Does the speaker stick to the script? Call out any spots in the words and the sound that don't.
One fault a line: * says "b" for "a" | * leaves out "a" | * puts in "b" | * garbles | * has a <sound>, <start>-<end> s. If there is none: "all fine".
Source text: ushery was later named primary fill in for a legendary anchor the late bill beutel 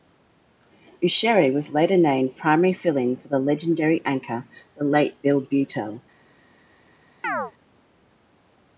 * says "the" for "a"
* has a chirp, 7.2-7.5 s